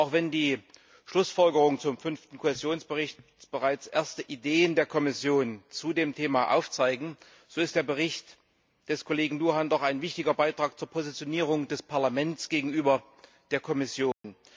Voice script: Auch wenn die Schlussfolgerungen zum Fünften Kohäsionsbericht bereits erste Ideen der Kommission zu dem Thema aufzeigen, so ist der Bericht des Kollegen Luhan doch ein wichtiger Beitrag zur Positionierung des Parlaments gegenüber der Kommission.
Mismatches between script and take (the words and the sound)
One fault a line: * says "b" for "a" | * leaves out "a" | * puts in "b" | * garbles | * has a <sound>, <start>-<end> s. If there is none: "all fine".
* has a dropout, 14.1-14.2 s